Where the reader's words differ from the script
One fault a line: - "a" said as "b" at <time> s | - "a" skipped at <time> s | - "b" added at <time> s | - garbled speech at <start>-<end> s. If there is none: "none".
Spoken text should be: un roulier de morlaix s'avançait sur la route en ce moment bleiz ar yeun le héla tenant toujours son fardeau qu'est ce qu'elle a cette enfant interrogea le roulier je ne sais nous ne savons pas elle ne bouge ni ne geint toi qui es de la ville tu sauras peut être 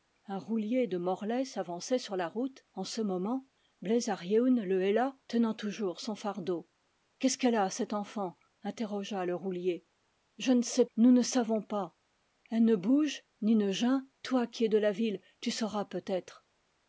none